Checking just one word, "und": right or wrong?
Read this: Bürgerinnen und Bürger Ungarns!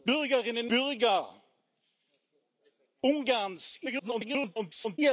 wrong